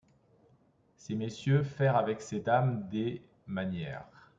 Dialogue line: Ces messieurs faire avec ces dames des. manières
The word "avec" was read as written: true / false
true